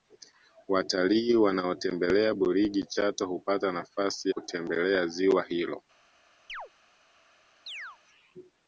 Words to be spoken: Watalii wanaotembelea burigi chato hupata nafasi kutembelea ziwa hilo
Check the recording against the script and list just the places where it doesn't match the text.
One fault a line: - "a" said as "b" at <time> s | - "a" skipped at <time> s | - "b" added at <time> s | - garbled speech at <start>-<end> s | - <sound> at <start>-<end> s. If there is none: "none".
- chirp at 6.5-6.7 s
- chirp at 7.7-8.0 s